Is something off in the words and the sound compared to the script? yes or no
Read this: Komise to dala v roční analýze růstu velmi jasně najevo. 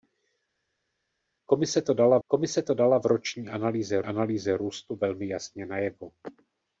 yes